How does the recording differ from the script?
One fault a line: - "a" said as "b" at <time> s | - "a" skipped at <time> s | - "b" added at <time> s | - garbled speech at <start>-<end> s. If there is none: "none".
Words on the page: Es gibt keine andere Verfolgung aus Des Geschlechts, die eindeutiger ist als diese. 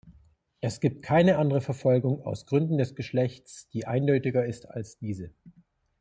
- "Gründen" added at 2.5 s